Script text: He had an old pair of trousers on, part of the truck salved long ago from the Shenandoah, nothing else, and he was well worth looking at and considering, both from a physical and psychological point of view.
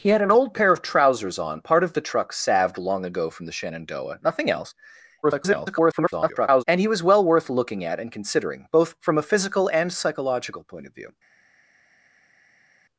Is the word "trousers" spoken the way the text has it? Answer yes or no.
yes